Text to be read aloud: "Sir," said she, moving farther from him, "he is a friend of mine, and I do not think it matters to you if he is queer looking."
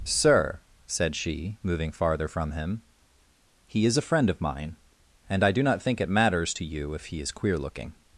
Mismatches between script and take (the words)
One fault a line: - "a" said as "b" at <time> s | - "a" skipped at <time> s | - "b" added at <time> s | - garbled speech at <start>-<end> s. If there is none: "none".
none